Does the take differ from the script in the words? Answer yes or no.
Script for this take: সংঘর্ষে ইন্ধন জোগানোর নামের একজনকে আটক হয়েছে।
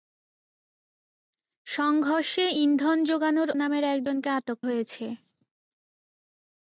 no